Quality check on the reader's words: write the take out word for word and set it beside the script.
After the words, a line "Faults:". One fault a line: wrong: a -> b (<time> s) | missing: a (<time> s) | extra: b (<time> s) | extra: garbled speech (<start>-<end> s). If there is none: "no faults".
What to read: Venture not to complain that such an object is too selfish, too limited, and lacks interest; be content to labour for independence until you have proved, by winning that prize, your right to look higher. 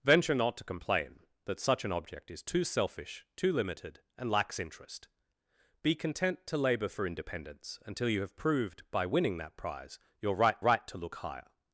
Venture not to complain that such an object is too selfish, too limited, and lacks interest; be content to labour for independence until you have proved, by winning that prize, your right right to look higher.
Faults:
extra: right (10.6 s)